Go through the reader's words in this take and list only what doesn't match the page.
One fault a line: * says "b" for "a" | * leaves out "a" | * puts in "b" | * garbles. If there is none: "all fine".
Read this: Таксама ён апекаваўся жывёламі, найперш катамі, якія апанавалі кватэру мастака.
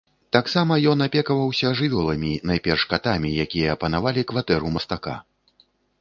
all fine